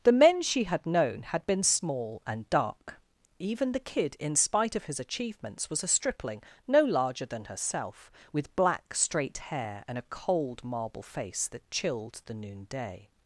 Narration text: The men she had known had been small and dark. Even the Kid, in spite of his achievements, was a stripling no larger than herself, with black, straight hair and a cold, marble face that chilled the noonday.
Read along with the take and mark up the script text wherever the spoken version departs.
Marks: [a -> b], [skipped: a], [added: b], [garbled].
The men she had known had been small and dark. Even the Kid, in spite of his achievements, was a stripling no larger than herself, with black, straight hair and a cold, marble face that chilled the noonday.